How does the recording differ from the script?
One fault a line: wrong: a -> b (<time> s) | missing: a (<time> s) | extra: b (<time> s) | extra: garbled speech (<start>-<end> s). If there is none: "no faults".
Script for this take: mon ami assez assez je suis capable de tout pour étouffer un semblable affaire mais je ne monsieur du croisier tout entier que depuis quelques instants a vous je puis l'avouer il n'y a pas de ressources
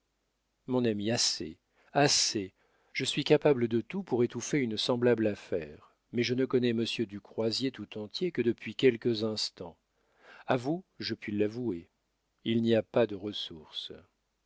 wrong: un -> une (4.6 s)
extra: connais (6.5 s)